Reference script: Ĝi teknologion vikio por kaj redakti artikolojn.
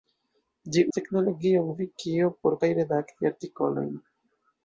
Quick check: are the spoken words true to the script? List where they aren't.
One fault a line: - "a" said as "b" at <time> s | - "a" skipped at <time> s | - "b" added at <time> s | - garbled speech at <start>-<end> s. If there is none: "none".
none